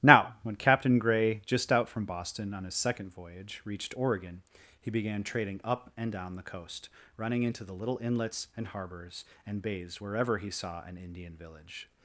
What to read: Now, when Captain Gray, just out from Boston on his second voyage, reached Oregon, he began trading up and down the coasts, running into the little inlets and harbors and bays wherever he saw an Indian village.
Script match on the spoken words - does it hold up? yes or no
no